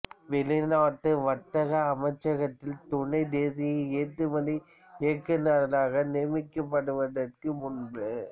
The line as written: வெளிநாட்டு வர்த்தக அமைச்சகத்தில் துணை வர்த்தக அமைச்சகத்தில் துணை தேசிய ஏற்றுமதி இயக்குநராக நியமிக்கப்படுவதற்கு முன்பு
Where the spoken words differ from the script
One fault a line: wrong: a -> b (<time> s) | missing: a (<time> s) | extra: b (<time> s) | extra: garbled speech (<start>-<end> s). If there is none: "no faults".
missing: வர்த்தக அமைச்சகத்தில் துணை (3.2 s)